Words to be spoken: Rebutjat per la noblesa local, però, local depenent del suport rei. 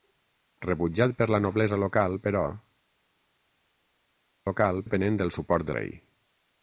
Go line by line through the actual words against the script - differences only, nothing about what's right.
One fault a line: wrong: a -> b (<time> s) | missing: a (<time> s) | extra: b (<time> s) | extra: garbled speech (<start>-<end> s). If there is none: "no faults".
no faults